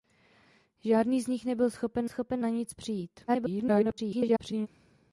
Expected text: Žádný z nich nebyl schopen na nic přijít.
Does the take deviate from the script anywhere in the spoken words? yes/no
yes